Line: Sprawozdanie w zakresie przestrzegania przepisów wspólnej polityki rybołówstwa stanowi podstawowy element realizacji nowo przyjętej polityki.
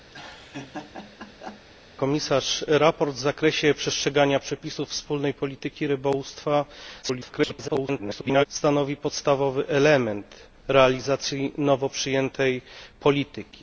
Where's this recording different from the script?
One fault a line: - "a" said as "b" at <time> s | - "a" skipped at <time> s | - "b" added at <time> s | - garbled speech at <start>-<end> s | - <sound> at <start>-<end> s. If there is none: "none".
- laugh at 0.1-1.7 s
- garbled speech at 7.0-8.5 s